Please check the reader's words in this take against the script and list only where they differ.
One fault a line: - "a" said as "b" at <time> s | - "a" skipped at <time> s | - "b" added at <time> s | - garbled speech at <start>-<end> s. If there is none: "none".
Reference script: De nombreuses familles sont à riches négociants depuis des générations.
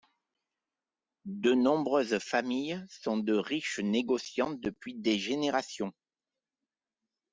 - "à" said as "de" at 3.2 s